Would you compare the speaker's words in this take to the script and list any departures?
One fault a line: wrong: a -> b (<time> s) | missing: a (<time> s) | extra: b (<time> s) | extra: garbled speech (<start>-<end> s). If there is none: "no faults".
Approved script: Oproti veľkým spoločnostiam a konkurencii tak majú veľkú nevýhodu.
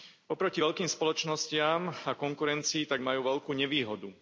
no faults